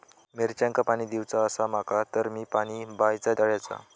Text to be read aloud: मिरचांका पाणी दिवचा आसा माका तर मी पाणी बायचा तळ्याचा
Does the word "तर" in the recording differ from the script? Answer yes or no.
no